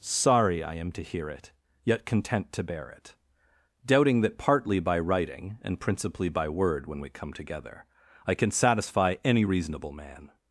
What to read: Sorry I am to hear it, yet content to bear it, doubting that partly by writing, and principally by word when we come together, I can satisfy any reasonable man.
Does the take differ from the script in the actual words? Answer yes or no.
no